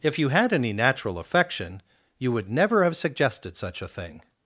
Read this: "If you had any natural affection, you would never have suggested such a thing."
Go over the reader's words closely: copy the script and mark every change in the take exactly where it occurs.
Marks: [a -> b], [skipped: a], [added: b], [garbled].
"If you had any natural affection, you would never have suggested such a thing."